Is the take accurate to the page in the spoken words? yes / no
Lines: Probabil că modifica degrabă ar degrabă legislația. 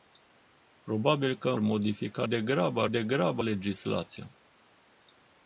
yes